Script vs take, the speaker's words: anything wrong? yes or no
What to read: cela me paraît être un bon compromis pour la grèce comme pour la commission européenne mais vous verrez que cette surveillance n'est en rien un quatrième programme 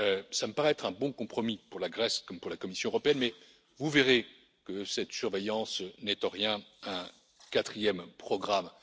no